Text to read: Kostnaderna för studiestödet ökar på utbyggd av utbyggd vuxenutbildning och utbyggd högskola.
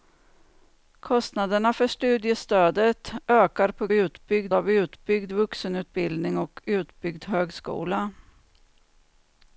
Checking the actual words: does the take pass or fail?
pass